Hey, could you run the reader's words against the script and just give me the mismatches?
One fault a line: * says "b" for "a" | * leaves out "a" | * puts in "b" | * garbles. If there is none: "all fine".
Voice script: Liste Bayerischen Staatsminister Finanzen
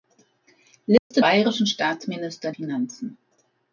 all fine